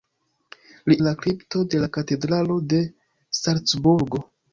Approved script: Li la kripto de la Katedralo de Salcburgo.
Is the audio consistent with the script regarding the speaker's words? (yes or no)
yes